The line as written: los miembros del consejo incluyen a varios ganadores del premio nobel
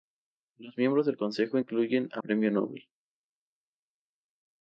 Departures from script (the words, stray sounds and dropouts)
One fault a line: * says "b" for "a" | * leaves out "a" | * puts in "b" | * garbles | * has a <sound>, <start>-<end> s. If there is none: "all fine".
* leaves out "varios ganadores del"